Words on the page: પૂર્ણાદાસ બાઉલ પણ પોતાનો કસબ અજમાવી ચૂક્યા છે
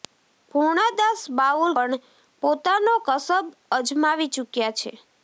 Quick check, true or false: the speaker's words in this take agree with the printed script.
true